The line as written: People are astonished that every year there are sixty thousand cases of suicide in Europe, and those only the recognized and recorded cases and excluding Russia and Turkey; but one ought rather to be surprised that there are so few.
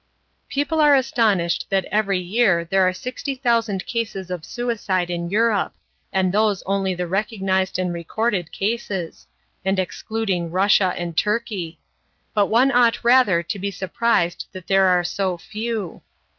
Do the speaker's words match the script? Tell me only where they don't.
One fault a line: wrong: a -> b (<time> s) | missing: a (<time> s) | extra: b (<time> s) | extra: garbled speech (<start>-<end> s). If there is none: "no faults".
no faults